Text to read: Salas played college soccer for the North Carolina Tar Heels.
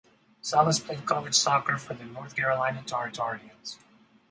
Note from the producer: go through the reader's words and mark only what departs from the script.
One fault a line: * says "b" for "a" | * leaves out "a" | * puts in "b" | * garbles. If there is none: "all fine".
* puts in "Tar"